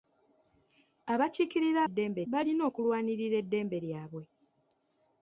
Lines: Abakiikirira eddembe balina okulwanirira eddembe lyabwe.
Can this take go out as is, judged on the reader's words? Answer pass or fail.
pass